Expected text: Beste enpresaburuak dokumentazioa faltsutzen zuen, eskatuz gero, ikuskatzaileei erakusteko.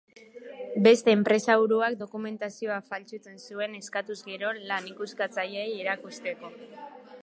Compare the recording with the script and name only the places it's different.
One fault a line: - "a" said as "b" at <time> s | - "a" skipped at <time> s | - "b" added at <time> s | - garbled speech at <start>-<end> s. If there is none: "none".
- "lan" added at 4.7 s